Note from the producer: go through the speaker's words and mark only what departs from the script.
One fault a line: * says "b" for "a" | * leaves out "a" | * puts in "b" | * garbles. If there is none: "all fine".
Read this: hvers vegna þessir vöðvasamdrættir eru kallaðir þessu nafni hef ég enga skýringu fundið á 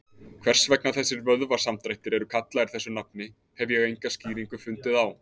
all fine